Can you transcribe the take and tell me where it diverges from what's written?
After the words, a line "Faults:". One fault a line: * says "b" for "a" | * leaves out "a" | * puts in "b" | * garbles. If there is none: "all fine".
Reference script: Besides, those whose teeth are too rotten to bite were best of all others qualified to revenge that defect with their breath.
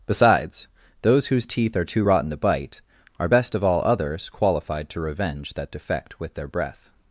Besides, those whose teeth are too rotten to bite are best of all others qualified to revenge that defect with their breath.
Faults:
* says "are" for "were"